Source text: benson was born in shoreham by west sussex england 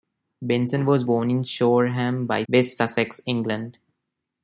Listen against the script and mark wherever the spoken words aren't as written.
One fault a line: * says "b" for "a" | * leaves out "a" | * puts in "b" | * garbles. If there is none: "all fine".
all fine